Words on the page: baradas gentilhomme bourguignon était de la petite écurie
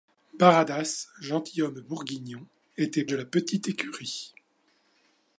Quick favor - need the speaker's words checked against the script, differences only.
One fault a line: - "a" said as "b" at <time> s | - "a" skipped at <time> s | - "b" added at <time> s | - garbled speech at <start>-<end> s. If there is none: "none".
none